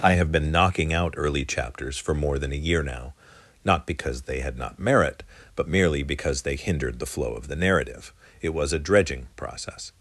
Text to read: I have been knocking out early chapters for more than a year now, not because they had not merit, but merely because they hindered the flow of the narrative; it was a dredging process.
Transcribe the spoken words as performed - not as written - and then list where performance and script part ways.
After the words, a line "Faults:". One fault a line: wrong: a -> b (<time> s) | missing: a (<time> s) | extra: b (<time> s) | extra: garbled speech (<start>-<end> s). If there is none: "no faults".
I have been knocking out early chapters for more than a year now, not because they had not merit, but merely because they hindered the flow of the narrative; it was a dredging process.
Faults:
no faults